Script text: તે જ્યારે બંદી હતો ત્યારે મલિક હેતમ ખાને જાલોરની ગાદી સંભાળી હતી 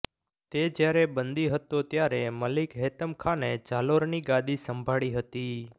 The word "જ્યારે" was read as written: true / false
true